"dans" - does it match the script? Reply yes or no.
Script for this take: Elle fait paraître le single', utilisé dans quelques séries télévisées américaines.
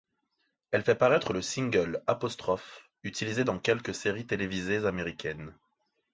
yes